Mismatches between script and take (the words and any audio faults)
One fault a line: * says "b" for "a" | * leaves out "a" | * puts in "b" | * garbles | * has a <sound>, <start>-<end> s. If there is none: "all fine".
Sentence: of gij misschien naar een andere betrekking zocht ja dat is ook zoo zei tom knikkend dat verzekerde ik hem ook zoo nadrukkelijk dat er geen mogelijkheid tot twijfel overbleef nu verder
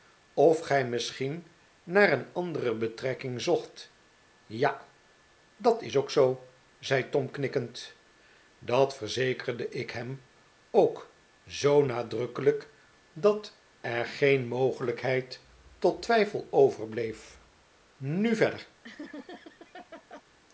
* has a laugh, 18.8-20.2 s